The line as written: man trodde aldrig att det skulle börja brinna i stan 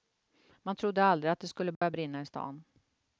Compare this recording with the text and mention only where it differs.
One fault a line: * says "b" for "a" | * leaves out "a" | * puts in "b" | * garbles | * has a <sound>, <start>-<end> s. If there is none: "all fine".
* has a dropout, 1.7-1.8 s